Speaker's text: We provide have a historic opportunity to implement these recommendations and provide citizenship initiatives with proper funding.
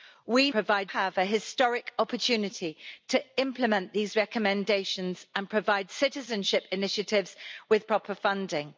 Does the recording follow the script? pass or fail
pass